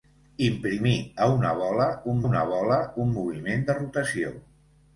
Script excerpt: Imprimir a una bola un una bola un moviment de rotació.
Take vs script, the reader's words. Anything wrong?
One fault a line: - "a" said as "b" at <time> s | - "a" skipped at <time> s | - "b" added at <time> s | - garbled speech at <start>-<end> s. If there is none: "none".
none